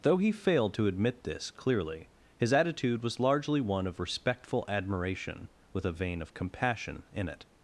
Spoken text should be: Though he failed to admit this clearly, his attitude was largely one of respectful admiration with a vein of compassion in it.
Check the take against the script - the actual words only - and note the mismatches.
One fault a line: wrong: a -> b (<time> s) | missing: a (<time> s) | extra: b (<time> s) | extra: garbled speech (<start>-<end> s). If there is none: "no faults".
no faults